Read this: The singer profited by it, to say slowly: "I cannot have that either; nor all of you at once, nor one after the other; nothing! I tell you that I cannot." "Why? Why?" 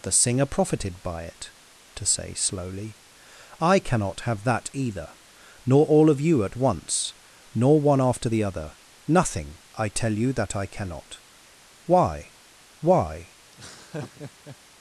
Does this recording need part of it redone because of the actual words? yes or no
no